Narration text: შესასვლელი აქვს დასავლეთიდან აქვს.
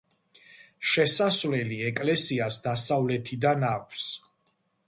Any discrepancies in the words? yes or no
yes